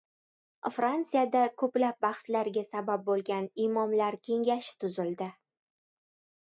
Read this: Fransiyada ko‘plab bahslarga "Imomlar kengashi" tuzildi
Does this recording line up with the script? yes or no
no